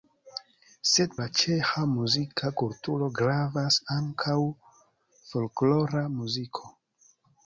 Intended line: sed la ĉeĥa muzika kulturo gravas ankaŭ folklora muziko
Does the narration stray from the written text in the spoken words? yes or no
no